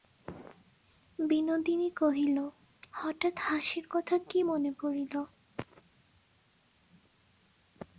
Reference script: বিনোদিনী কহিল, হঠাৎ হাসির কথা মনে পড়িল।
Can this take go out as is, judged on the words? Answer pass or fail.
fail